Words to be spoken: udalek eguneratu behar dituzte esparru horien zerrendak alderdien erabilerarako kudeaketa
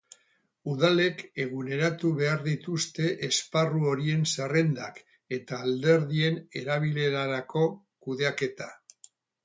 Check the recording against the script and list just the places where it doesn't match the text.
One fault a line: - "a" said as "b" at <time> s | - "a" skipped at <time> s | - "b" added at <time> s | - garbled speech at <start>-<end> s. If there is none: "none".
- "eta" added at 5.4 s